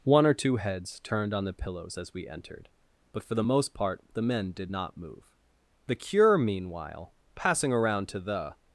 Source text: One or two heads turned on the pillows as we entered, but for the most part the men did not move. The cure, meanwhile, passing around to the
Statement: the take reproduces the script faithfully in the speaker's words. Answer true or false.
true